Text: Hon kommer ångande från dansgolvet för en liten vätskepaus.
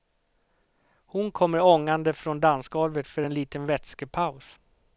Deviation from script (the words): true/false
false